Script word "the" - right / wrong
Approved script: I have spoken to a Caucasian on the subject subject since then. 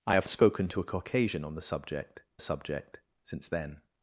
right